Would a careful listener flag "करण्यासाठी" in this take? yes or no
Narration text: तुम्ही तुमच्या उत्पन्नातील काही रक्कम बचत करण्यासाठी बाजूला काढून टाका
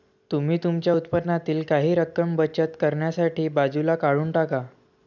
no